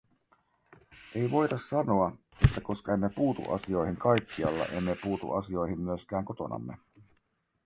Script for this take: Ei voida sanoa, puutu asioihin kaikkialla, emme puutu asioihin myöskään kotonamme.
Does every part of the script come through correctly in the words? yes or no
no